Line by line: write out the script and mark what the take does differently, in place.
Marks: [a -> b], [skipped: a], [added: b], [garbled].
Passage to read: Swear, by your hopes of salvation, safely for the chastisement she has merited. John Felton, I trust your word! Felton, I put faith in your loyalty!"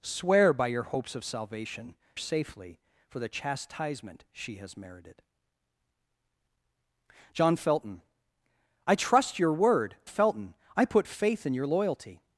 Swear, by your hopes of salvation, safely for the chastisement she has merited. John Felton, I trust your word! Felton, I put faith in your loyalty!"